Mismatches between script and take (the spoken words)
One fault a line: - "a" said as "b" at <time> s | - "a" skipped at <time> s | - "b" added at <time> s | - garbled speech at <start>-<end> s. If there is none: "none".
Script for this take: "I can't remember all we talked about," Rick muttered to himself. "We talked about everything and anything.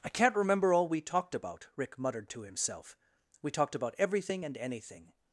none